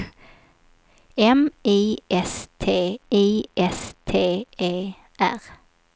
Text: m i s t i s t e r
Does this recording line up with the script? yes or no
yes